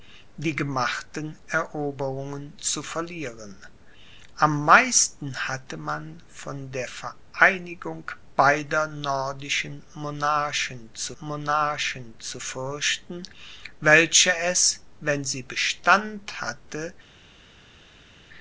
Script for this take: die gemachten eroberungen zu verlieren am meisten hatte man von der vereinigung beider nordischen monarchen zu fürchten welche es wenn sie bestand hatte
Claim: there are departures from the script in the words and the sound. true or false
true